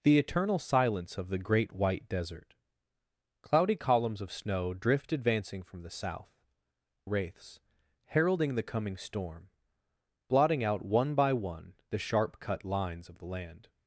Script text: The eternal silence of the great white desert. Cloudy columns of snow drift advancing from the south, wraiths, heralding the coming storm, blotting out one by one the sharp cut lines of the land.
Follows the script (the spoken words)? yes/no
yes